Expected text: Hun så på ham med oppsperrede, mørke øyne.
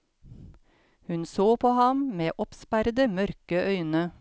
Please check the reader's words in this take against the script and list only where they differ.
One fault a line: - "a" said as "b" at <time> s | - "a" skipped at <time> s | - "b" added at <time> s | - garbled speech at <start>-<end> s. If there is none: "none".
none